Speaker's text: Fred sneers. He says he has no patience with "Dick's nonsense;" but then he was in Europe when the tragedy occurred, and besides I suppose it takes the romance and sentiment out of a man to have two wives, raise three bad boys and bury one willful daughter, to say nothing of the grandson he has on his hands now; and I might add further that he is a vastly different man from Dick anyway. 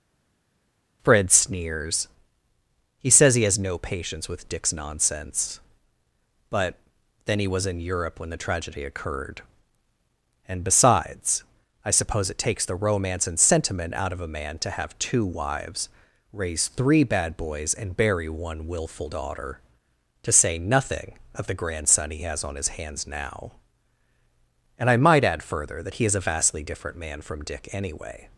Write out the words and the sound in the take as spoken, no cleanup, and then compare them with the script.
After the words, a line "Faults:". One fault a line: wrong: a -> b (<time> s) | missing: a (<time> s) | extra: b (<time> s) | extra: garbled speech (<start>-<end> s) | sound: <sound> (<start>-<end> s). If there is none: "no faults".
Fred sneers. He says he has no patience with "Dick's nonsense;" but then he was in Europe when the tragedy occurred, and besides I suppose it takes the romance and sentiment out of a man to have two wives, raise three bad boys and bury one willful daughter, to say nothing of the grandson he has on his hands now; and I might add further that he is a vastly different man from Dick anyway.
Faults:
no faults